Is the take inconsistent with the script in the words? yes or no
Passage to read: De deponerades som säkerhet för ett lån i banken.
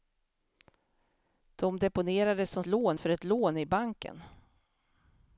yes